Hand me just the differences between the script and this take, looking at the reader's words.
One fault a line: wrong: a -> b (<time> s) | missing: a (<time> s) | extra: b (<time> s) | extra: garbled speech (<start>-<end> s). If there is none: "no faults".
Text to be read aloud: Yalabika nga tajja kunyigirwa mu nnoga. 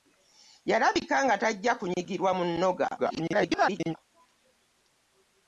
extra: garbled speech (3.0-4.0 s)